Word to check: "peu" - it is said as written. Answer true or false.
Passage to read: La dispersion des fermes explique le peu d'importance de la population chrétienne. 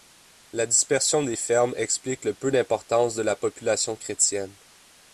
true